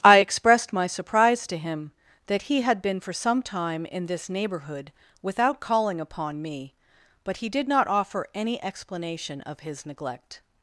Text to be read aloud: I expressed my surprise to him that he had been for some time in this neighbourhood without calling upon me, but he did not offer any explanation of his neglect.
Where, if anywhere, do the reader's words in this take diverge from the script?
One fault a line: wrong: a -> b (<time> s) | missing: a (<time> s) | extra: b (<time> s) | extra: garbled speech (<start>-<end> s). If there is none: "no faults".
no faults